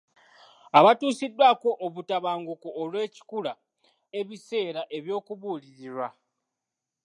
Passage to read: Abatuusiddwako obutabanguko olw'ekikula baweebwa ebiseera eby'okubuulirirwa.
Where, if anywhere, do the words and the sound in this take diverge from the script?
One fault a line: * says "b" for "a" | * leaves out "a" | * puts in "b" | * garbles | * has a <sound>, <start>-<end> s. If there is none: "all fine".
* leaves out "baweebwa"